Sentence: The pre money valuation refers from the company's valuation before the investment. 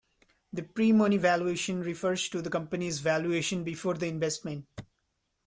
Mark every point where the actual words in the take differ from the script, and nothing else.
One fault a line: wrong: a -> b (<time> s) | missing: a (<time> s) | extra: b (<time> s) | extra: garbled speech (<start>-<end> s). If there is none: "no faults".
wrong: from -> to (2.3 s)